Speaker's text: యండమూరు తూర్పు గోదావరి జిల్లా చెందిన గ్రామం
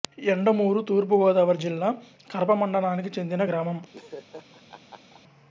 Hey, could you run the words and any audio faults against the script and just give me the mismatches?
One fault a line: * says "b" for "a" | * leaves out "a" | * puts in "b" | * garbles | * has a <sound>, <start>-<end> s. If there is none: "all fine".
* puts in "కరప మండలానికి"
* has a laugh, 3.9-5.2 s